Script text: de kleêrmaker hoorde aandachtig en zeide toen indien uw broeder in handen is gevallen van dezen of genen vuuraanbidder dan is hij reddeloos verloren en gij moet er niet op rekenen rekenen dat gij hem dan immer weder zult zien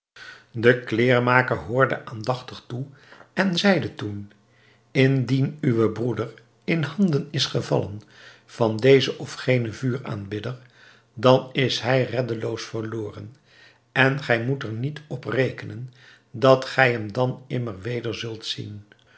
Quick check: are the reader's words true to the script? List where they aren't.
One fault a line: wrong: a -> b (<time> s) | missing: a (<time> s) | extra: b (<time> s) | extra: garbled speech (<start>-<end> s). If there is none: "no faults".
extra: toe (2.7 s)
missing: rekenen (15.9 s)